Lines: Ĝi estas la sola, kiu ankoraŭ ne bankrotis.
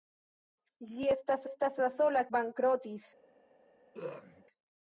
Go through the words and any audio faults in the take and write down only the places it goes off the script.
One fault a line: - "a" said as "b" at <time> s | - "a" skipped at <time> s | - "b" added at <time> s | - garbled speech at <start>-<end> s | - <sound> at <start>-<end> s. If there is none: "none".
- "estas" added at 1.5 s
- "kiu ankoraŭ ne" skipped at 2.2 s
- throat clearing at 3.9-4.4 s